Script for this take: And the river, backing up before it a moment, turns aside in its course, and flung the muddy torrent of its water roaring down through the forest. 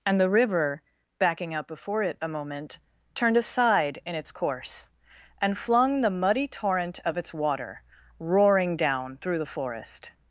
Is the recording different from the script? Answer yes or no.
yes